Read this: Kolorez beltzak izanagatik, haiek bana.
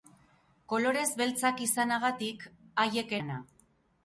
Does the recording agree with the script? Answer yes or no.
yes